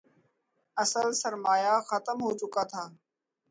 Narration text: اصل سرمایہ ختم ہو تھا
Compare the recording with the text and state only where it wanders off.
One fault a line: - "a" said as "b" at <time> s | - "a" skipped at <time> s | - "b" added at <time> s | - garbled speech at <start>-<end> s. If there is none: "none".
- "چکا" added at 2.4 s